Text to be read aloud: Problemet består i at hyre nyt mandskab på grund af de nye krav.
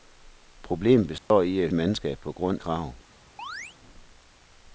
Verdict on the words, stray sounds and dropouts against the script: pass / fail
fail